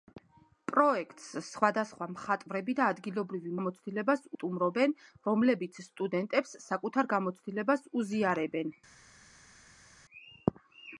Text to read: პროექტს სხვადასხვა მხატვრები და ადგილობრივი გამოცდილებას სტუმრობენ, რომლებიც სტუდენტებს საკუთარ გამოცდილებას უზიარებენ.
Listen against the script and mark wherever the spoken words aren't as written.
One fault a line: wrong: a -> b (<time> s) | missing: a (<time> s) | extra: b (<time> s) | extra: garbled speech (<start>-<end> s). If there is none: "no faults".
no faults